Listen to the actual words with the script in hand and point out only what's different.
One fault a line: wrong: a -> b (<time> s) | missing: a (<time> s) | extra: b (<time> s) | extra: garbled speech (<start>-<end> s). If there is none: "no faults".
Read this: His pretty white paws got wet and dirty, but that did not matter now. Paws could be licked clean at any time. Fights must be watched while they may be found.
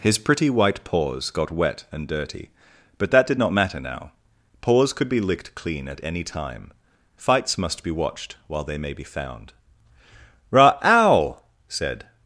extra: Ra ow said (10.5 s)